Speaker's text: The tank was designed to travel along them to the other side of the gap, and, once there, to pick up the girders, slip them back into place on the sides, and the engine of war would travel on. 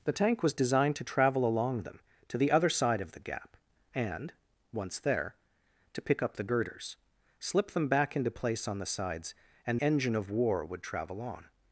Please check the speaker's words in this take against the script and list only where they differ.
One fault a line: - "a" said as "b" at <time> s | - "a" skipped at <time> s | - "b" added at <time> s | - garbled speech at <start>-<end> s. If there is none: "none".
- "the" skipped at 9.8 s